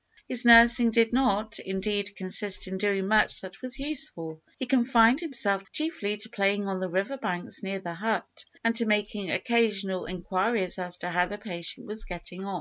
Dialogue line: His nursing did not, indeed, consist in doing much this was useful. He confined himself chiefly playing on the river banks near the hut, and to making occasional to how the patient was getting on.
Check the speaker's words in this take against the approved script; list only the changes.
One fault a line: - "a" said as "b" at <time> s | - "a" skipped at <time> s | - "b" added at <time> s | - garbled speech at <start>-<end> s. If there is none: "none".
- "this" said as "that" at 3.4 s
- "to" added at 6.2 s
- "inquiries as" added at 10.1 s